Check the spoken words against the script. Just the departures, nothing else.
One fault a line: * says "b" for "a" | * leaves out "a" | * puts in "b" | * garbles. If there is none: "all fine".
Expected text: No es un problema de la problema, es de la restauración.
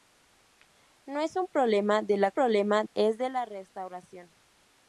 all fine